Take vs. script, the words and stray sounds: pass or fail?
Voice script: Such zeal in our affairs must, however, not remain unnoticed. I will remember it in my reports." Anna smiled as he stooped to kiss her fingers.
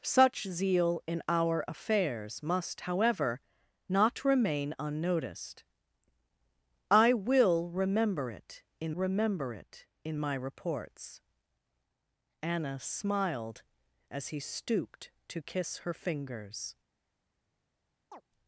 fail